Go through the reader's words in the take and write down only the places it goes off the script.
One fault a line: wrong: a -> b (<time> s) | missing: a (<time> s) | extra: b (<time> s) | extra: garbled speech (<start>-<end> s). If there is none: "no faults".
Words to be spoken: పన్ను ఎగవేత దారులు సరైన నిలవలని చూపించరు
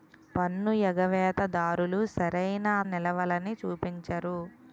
no faults